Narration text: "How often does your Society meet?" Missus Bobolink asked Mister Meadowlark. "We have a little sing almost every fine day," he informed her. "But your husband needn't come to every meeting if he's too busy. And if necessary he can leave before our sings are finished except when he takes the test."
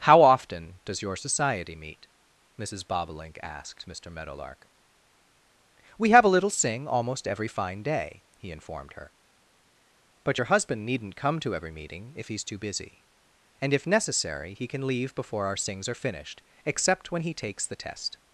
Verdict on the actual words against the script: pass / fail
pass